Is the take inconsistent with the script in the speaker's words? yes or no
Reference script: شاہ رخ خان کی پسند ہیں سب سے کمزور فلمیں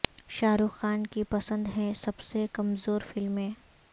no